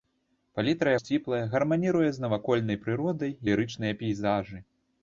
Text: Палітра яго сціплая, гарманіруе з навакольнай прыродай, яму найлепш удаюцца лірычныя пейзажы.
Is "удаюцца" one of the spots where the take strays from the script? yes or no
yes